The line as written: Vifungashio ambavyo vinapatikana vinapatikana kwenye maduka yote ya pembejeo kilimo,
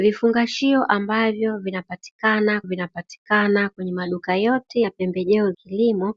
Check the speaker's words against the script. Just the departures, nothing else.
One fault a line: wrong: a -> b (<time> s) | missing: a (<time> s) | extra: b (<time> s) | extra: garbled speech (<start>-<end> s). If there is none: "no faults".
no faults